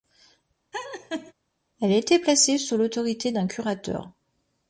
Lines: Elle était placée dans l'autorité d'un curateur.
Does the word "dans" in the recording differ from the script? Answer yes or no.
yes